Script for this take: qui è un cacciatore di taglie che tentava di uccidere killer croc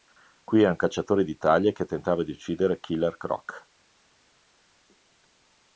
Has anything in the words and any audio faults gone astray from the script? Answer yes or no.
no